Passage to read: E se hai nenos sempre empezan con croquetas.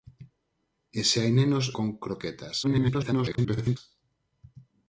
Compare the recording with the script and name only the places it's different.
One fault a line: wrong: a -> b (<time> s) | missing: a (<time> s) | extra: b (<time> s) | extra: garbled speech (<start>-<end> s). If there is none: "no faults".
missing: sempre empezan (1.6 s)
extra: garbled speech (2.6-3.8 s)